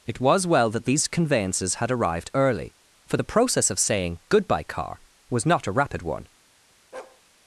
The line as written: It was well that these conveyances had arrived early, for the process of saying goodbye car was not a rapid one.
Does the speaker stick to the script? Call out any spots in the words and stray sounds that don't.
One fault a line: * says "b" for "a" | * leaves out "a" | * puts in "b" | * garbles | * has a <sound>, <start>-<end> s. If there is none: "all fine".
* has a bark, 6.9-7.2 s